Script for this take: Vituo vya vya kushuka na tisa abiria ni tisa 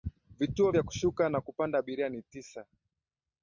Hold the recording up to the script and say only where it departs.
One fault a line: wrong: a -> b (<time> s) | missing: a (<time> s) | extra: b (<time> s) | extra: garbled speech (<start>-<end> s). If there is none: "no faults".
missing: vya (0.8 s)
wrong: tisa -> kupanda (1.4 s)